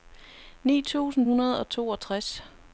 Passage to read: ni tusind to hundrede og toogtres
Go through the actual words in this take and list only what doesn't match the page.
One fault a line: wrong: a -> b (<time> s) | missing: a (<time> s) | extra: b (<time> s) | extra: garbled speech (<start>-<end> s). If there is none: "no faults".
missing: to (1.3 s)